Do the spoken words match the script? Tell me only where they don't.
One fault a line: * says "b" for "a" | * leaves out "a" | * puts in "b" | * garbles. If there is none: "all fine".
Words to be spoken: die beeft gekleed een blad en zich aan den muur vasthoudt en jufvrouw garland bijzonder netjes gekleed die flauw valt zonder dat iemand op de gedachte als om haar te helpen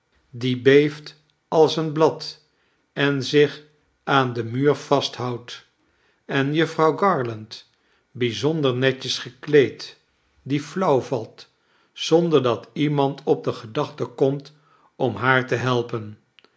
* says "als" for "gekleed"
* says "komt" for "als"